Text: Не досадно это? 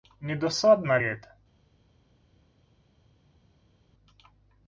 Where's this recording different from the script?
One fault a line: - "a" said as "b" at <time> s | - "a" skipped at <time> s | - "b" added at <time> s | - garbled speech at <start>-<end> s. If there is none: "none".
none